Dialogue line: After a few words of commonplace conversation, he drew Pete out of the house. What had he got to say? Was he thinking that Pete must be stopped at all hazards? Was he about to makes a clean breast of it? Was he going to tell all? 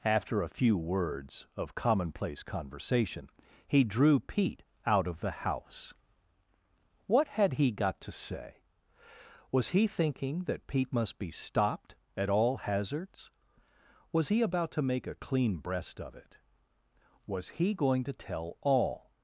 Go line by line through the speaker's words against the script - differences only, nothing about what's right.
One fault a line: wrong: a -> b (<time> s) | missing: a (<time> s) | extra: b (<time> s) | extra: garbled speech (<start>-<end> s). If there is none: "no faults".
wrong: makes -> make (14.8 s)